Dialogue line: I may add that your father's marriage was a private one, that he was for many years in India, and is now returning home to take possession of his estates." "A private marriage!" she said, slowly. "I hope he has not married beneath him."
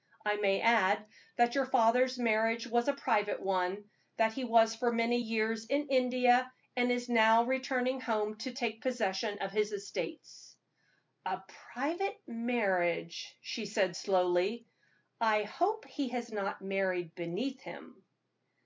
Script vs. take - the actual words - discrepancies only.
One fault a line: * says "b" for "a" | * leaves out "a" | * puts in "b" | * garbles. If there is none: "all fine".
all fine